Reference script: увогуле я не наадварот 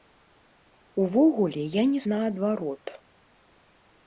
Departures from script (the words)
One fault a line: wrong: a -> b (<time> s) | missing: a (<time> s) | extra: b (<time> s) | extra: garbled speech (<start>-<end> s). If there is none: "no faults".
no faults